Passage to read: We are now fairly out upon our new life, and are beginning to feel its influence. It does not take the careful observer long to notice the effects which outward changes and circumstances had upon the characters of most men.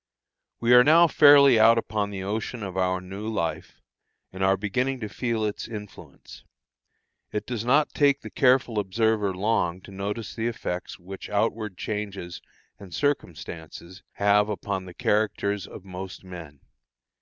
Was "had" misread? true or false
true